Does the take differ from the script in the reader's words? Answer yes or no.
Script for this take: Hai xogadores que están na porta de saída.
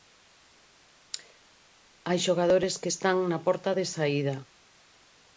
no